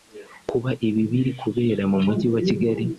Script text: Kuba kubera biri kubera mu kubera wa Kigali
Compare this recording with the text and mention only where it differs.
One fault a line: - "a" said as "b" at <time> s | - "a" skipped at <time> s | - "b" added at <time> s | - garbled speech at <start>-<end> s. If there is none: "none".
- "kubera" said as "ibi" at 0.9 s
- "kubera" said as "mujyi" at 2.0 s